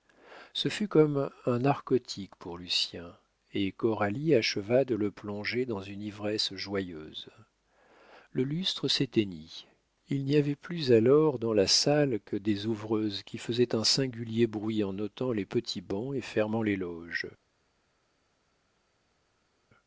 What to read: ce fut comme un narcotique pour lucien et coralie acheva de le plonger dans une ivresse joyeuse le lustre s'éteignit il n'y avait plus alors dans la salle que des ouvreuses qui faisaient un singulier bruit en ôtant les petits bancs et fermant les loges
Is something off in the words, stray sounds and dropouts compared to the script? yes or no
no